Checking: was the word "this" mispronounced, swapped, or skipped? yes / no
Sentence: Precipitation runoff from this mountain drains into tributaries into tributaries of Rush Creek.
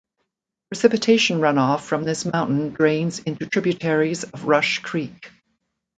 no